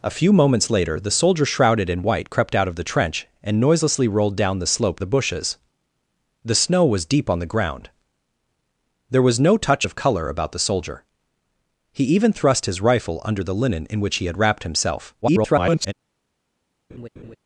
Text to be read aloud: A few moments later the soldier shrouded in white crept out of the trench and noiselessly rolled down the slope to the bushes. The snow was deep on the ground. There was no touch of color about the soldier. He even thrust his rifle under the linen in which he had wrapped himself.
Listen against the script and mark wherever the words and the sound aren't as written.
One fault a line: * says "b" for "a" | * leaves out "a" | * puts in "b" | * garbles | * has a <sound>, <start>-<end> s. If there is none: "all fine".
* leaves out "to"
* garbles
* has a laugh, 16.9-17.4 s